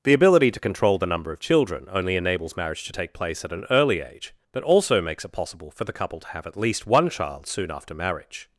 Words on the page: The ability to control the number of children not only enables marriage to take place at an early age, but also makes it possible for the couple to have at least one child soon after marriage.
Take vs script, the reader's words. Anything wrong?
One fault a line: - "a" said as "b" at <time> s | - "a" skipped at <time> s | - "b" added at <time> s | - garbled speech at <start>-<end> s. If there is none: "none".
- "not" skipped at 1.9 s